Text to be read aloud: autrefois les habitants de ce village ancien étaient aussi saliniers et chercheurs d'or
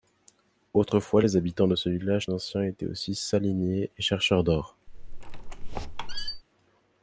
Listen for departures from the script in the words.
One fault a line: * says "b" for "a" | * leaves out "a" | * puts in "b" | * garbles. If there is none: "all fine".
all fine